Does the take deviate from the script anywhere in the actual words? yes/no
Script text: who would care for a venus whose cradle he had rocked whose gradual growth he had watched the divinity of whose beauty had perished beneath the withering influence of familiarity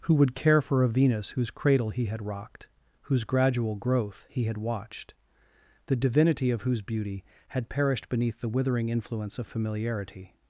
no